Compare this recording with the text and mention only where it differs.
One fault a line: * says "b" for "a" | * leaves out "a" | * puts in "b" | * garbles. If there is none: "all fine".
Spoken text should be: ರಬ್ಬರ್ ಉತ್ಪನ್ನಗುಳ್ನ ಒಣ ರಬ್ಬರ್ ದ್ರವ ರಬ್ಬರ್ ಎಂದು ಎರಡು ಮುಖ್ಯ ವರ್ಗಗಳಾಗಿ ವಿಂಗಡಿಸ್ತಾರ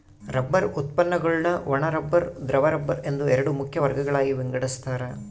all fine